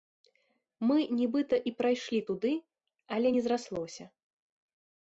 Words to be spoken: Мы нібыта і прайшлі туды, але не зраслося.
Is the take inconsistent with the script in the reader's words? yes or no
no